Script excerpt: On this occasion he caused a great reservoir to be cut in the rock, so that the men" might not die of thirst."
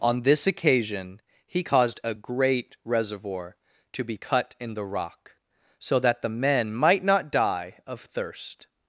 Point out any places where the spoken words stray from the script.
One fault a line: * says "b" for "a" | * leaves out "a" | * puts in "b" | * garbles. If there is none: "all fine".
all fine